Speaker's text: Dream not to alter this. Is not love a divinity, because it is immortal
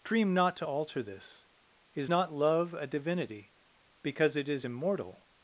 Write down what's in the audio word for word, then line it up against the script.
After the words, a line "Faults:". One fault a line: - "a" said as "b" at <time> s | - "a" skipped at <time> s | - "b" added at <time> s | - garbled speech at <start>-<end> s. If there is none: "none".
Dream not to alter this. Is not love a divinity, because it is immortal
Faults:
none